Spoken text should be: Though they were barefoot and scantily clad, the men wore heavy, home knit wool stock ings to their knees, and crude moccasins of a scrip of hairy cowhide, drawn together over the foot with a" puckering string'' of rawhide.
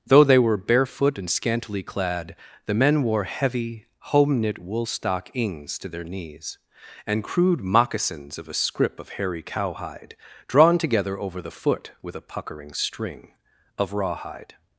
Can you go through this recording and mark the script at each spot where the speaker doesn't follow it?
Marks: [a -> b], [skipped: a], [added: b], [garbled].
Though they were barefoot and scantily clad, the men wore heavy, home knit wool stock ings to their knees, and crude moccasins of a scrip of hairy cowhide, drawn together over the foot with a" puckering string'' of rawhide.